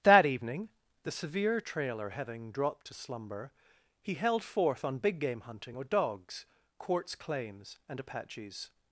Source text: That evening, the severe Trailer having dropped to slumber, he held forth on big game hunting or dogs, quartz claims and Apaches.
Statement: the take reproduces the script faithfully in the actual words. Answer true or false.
true